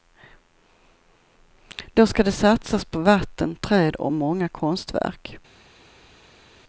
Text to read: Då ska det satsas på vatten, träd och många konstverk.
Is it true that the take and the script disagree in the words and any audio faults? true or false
false